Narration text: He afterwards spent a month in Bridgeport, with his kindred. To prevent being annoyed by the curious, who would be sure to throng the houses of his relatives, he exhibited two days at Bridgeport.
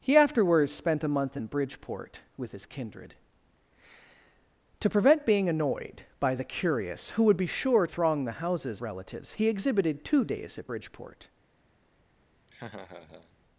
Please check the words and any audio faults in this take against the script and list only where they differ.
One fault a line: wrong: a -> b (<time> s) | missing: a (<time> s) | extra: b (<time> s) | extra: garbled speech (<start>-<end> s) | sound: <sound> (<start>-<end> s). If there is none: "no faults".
missing: to (7.8 s)
missing: of his (8.8 s)
sound: laugh (12.5-13.4 s)